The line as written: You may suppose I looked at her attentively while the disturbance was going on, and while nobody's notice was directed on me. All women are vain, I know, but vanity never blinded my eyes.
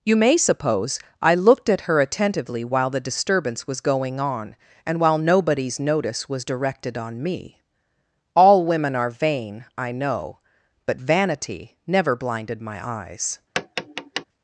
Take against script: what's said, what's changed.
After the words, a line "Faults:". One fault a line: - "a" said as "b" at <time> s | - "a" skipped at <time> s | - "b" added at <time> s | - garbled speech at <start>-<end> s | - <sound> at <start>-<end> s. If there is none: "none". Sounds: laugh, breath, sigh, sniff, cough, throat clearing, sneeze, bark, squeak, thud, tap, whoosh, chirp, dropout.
You may suppose I looked at her attentively while the disturbance was going on, and while nobody's notice was directed on me. All women are vain, I know, but vanity never blinded my eyes.
Faults:
- tap at 13.6-14.3 s